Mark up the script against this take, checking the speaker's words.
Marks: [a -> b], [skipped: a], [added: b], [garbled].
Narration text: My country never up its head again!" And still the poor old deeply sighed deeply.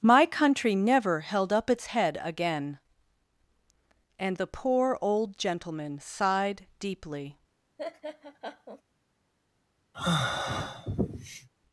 My country never [added: held] up its head again!" And [skipped: still] the poor old [deeply -> gentleman] sighed deeply.